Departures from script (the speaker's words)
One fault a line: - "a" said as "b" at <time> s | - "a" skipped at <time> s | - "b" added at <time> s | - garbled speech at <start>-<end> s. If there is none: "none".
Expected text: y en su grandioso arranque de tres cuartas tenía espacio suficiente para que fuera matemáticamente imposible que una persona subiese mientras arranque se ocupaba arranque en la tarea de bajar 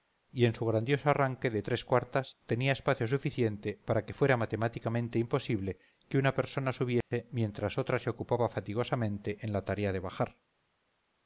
- "arranque" said as "otra" at 7.8 s
- "arranque" said as "fatigosamente" at 8.5 s